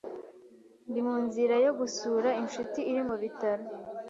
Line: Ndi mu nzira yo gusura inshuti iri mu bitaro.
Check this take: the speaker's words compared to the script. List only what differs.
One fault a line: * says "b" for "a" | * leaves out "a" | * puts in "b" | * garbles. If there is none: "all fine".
all fine